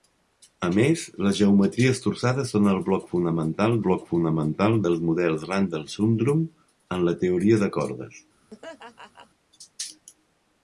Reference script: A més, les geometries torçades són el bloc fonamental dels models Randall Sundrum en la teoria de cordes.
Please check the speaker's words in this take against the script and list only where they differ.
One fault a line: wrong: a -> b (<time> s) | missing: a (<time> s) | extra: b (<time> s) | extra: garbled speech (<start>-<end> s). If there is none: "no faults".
extra: bloc fonamental (3.8 s)